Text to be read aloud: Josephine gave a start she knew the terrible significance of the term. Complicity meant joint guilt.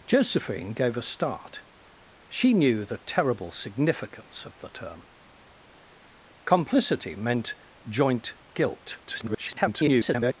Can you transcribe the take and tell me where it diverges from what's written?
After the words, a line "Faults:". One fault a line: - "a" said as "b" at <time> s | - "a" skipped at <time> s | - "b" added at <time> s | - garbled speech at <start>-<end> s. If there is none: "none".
Josephine gave a start she knew the terrible significance of the term. Complicity meant joint guilt. [garbled]
Faults:
- garbled speech at 9.1-10.3 s